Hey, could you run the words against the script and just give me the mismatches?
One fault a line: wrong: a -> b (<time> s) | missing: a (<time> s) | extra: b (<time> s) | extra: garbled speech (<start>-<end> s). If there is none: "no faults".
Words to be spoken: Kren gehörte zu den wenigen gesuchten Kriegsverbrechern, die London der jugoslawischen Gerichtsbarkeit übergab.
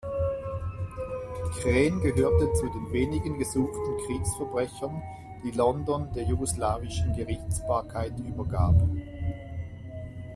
no faults